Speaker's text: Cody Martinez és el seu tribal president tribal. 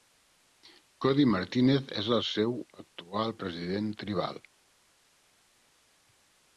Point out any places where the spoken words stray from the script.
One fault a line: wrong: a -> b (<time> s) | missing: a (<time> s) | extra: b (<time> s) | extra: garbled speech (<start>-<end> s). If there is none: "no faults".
wrong: tribal -> actual (2.9 s)